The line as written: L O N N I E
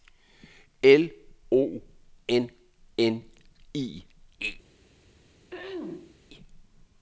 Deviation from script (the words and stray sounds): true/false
true